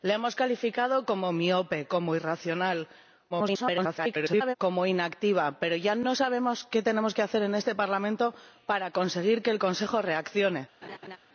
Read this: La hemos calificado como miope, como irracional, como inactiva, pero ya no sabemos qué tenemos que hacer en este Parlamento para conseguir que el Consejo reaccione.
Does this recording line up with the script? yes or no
no